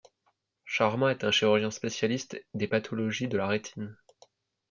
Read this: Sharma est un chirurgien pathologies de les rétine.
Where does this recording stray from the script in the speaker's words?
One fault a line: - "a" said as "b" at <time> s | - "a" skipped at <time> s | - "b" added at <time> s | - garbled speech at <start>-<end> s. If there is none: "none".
- "spécialiste des" added at 1.7 s
- "les" said as "la" at 3.3 s